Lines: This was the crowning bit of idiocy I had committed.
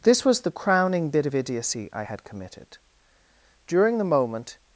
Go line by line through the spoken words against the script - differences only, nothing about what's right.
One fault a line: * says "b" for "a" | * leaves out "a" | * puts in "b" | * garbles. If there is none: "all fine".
* puts in "During the moment"